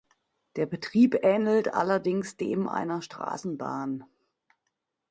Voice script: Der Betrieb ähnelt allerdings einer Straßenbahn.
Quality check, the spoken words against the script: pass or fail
fail